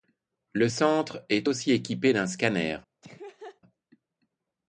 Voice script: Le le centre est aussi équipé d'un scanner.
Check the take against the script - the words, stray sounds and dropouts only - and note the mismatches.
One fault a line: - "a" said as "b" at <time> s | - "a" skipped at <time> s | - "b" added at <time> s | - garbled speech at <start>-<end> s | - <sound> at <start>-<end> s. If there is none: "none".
- "le" skipped at 0.7 s
- laugh at 3.0-3.6 s